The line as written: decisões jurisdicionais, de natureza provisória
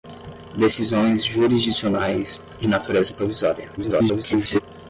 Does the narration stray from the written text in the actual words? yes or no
yes